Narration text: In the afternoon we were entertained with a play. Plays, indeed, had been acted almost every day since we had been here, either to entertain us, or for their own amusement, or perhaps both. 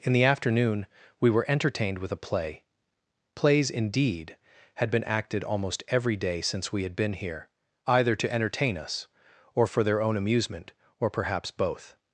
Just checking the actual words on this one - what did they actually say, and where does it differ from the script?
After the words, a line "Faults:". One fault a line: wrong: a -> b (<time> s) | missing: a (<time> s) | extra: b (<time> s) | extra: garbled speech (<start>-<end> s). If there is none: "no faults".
In the afternoon we were entertained with a play. Plays, indeed, had been acted almost every day since we had been here, either to entertain us, or for their own amusement, or perhaps both.
Faults:
no faults